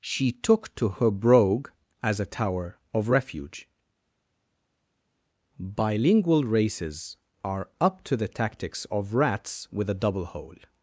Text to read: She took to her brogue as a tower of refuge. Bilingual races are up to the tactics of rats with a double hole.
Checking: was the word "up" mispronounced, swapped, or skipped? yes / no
no